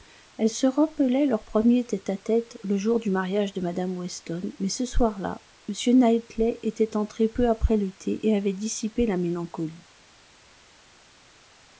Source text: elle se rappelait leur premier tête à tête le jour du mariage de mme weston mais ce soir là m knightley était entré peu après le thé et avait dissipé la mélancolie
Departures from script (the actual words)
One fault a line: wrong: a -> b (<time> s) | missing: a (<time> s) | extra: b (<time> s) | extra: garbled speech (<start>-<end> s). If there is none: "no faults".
no faults